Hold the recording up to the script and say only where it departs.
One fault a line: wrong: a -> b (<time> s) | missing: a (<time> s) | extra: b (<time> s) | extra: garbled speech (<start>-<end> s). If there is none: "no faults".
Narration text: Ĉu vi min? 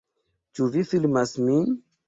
extra: filmas (0.9 s)